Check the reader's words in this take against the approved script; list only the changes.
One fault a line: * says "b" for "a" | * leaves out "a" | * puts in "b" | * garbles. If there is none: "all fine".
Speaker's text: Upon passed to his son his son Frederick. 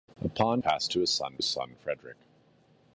all fine